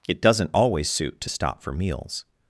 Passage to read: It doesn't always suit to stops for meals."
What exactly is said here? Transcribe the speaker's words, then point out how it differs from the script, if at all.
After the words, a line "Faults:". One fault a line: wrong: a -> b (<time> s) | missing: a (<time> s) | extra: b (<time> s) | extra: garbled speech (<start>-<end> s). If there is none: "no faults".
It doesn't always suit to stop for meals."
Faults:
wrong: stops -> stop (1.3 s)